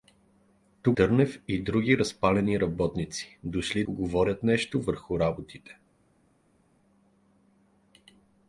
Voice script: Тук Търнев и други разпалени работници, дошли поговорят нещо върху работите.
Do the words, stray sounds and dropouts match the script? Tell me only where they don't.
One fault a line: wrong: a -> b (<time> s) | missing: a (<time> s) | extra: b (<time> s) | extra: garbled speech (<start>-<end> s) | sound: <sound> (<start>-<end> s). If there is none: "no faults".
no faults